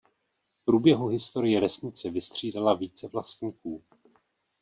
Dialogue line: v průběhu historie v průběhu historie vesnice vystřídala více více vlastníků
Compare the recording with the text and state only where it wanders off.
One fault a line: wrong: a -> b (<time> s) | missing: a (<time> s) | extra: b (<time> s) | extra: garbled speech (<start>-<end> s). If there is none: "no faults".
missing: v průběhu historie (1.6 s)
missing: více (3.1 s)